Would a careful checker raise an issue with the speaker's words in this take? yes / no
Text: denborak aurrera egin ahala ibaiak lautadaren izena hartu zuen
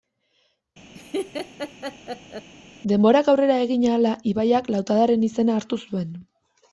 no